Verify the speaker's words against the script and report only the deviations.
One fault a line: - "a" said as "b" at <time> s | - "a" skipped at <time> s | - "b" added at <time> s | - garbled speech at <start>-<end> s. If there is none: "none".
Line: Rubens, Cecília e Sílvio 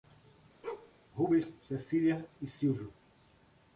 none